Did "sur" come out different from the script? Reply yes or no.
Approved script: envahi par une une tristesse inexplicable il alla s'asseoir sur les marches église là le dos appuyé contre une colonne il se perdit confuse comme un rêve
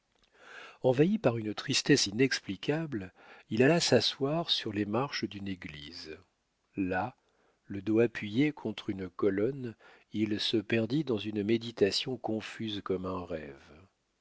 no